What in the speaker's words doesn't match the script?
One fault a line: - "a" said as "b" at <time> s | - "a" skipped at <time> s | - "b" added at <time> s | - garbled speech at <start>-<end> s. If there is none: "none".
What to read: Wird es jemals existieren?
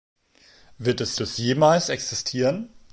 - "es" added at 1.2 s